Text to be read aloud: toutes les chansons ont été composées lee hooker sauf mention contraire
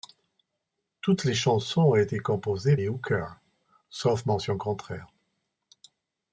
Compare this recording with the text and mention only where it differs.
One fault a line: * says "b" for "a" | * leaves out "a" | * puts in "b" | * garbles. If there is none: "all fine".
all fine